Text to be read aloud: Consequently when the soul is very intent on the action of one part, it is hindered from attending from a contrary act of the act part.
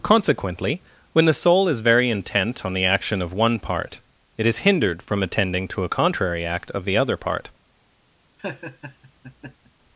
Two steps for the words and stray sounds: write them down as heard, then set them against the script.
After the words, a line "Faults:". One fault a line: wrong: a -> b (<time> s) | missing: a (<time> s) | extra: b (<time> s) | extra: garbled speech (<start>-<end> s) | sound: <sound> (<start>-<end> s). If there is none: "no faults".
Consequently when the soul is very intent on the action of one part, it is hindered from attending to a contrary act of the other part.
Faults:
wrong: from -> to (5.7 s)
wrong: act -> other (6.9 s)
sound: laugh (8.4-9.7 s)